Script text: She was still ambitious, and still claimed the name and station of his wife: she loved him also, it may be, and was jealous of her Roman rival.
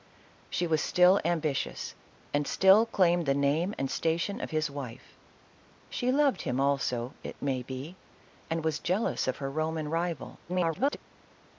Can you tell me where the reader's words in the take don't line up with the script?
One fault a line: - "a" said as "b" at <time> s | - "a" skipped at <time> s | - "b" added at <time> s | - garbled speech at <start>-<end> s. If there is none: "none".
- garbled speech at 10.5-11.0 s